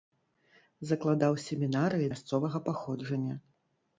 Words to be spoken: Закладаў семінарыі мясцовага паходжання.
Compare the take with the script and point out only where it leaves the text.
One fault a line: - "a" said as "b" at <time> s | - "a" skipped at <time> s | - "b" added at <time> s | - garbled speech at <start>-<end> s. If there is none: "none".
none